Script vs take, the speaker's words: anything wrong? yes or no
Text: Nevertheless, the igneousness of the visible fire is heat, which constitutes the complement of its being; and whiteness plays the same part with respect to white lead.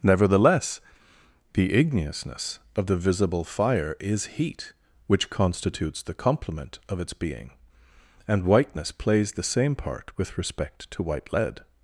no